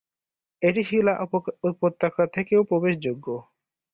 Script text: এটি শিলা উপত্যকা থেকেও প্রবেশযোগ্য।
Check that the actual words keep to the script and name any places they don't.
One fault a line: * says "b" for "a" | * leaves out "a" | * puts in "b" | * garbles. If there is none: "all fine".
all fine